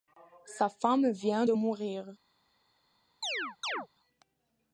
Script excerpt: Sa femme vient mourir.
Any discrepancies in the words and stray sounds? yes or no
yes